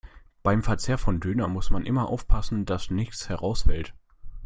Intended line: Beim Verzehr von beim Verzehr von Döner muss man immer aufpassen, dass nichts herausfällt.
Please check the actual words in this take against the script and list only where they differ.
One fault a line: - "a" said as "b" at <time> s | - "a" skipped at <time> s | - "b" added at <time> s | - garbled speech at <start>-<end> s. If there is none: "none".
- "beim Verzehr von" skipped at 1.2 s